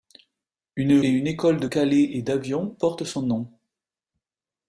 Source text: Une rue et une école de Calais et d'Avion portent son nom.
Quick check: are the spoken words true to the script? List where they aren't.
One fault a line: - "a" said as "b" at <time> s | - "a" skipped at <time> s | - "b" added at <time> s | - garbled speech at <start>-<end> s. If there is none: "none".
- "rue" skipped at 1.0 s